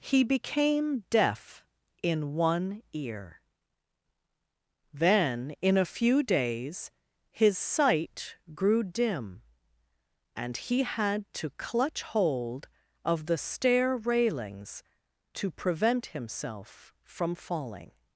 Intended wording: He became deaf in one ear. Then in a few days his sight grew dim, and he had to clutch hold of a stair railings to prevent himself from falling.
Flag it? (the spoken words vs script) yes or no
yes